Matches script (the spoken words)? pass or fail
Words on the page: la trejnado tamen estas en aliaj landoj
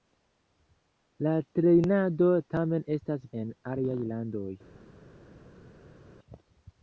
pass